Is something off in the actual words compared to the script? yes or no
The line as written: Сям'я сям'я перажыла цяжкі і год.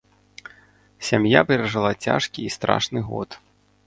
yes